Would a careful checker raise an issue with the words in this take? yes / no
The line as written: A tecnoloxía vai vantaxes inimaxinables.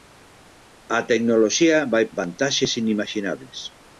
no